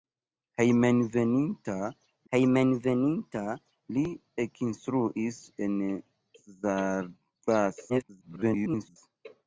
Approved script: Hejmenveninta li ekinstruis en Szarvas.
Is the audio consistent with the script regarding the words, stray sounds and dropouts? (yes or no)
no